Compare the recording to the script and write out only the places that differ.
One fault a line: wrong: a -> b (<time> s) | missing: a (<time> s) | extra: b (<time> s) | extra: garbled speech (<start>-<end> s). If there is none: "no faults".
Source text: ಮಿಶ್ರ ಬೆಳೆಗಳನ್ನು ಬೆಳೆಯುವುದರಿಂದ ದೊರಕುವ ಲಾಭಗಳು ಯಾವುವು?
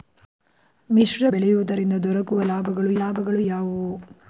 missing: ಬೆಳೆಗಳನ್ನು (1.2 s)
extra: ಲಾಭಗಳು (2.9 s)